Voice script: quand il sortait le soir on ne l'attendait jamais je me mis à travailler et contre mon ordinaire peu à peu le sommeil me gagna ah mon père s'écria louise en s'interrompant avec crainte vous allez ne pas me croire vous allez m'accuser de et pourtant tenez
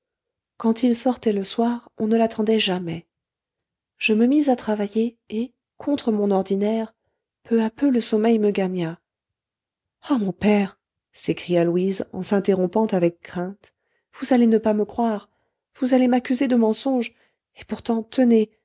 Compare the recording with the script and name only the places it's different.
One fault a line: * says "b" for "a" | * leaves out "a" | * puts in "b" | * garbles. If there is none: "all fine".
* puts in "mensonge"